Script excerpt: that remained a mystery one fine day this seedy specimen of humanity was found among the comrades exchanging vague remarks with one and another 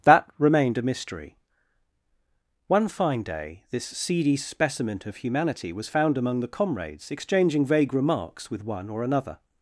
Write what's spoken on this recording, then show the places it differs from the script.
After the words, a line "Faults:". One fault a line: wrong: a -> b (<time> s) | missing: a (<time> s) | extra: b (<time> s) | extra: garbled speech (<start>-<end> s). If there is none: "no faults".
that remained a mystery one fine day this seedy specimen of humanity was found among the comrades exchanging vague remarks with one or another
Faults:
wrong: and -> or (8.9 s)